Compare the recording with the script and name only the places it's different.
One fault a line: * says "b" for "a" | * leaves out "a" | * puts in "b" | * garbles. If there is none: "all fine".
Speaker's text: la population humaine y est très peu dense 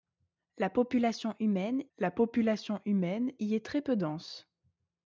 * puts in "la population humaine"